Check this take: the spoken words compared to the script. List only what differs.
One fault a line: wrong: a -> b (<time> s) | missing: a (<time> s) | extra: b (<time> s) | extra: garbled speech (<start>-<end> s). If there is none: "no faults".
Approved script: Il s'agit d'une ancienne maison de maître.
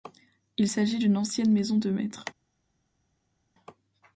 no faults